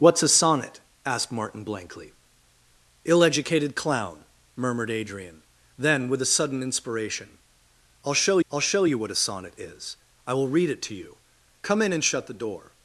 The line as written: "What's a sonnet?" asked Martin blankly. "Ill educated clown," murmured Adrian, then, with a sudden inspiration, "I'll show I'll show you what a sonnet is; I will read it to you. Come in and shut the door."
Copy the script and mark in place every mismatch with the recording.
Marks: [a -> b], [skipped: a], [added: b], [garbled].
"What's a sonnet?" asked Martin blankly. "Ill educated clown," murmured Adrian, then, with a sudden inspiration, "I'll show I'll show you what a sonnet is; I will read it to you. Come in and shut the door."